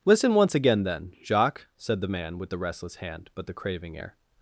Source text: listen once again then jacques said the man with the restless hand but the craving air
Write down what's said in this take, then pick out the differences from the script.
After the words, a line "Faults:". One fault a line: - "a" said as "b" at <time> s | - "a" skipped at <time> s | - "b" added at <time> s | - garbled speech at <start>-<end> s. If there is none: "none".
listen once again then jacques said the man with the restless hand but the craving air
Faults:
none